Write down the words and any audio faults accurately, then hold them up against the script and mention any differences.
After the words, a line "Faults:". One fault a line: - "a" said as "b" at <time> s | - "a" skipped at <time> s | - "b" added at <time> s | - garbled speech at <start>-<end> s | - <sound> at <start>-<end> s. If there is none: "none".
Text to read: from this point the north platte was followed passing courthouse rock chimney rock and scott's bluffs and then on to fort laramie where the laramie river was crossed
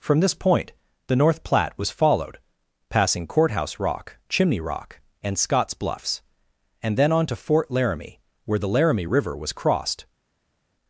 from this point the north platte was followed passing courthouse rock chimney rock and scott's bluffs and then on to fort laramie where the laramie river was crossed
Faults:
none